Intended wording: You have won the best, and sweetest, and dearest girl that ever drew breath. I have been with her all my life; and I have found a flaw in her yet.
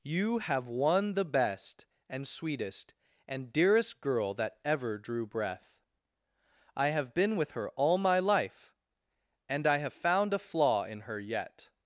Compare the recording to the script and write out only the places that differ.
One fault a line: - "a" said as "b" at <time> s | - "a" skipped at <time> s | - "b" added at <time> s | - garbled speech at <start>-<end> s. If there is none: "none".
none